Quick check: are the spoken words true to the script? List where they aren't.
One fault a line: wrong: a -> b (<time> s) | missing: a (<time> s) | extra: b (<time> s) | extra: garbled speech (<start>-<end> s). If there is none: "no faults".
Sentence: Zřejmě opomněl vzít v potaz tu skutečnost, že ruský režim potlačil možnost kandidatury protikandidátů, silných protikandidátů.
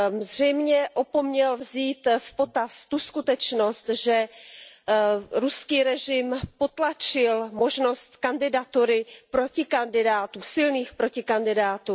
no faults